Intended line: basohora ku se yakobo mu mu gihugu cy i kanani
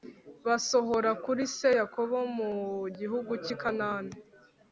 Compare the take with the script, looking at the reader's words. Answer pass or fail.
fail